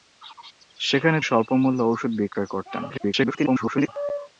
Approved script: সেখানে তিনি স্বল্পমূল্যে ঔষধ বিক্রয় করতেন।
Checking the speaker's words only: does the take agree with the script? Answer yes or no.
no